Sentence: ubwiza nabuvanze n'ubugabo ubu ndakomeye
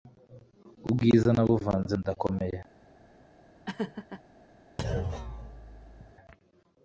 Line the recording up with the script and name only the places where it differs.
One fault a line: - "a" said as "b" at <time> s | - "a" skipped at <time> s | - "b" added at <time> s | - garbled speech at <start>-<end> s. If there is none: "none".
- "n'ubugabo ubu" skipped at 1.9 s